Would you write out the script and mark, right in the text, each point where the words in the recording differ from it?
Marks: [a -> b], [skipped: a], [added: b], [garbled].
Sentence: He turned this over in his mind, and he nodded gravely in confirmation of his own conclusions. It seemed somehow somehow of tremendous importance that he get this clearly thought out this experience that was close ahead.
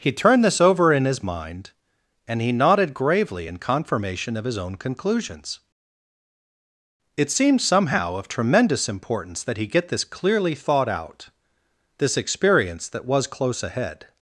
He turned this over in his mind, and he nodded gravely in confirmation of his own conclusions. It seemed somehow [skipped: somehow] of tremendous importance that he get this clearly thought out this experience that was close ahead.